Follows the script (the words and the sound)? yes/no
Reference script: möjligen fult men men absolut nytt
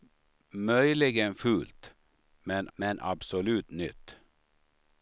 yes